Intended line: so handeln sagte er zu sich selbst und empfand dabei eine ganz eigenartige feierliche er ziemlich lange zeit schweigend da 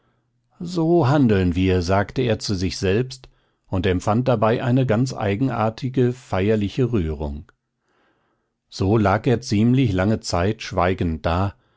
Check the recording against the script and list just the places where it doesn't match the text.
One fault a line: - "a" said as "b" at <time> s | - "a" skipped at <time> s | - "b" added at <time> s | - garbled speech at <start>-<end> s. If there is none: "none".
- "wir" added at 1.6 s
- "rührung so lag" added at 6.9 s